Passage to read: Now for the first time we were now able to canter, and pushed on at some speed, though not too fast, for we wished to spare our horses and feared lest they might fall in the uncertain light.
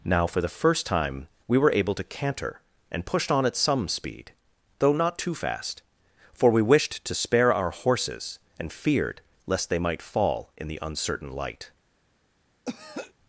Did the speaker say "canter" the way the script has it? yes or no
yes